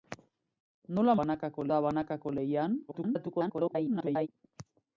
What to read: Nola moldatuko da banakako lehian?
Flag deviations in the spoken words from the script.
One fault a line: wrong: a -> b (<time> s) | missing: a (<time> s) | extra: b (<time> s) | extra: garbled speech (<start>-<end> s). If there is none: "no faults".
wrong: moldatuko -> banakako (1.2 s)
extra: garbled speech (2.9-4.3 s)